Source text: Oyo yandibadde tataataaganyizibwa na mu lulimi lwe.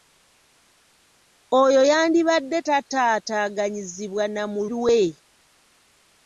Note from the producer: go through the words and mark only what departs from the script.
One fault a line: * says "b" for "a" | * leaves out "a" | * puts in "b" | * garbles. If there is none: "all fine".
* leaves out "lulimi"